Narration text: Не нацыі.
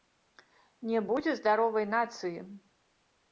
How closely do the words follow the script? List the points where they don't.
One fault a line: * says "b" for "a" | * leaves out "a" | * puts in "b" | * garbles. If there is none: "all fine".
* puts in "будзе здаровай"